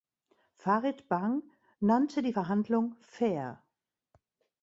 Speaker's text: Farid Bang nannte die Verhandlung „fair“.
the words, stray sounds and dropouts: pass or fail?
pass